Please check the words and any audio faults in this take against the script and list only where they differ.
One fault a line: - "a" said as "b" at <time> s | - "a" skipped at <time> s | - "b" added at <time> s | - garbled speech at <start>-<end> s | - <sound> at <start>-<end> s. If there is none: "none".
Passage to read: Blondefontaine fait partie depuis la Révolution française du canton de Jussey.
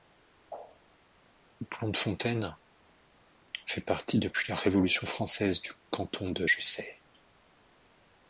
none